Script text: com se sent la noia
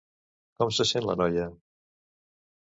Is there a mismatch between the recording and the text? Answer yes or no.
no